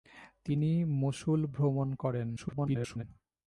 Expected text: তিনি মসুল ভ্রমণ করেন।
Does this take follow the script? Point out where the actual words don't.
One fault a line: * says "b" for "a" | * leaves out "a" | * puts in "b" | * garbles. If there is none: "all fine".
* garbles